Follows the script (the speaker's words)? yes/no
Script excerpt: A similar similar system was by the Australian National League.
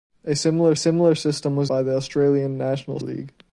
yes